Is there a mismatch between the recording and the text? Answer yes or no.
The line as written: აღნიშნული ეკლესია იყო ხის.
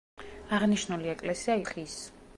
yes